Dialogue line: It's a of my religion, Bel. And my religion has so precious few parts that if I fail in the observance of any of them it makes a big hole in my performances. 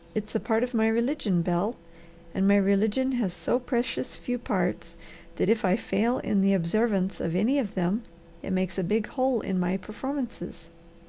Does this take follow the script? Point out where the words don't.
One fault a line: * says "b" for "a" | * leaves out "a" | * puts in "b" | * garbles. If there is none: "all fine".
* puts in "part"